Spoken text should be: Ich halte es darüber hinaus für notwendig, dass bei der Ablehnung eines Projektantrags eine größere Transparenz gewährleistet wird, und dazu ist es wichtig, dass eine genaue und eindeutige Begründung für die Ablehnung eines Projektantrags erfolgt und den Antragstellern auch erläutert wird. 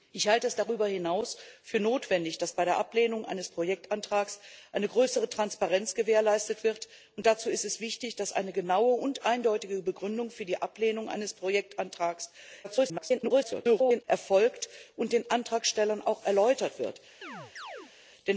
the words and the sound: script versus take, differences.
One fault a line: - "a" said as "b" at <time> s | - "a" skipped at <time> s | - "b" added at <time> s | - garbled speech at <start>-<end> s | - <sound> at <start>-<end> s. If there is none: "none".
- garbled speech at 12.6-14.0 s
- chirp at 17.2-17.9 s